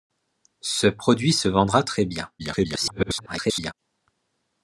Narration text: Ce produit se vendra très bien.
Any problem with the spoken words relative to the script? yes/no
yes